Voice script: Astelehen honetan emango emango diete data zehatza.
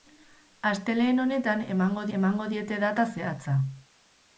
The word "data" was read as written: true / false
true